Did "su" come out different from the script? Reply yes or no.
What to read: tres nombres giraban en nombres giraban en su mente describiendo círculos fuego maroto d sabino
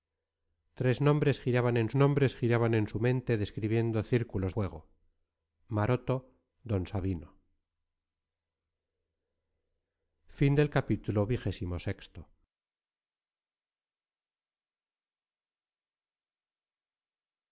no